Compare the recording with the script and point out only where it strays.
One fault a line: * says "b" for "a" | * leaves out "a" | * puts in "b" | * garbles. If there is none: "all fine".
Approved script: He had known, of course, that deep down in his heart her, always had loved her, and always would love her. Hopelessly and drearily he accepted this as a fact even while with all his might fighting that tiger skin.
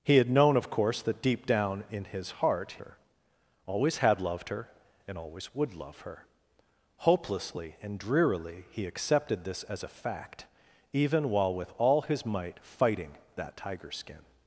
all fine